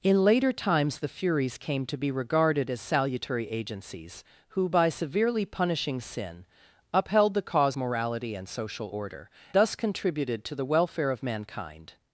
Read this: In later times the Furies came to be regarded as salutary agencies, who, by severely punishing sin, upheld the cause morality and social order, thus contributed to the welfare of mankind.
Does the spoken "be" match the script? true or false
true